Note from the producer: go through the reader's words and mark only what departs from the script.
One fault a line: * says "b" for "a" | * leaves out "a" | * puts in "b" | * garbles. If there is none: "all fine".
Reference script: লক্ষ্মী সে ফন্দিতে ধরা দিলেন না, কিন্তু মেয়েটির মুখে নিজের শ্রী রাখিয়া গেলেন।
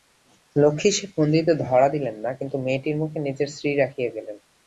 all fine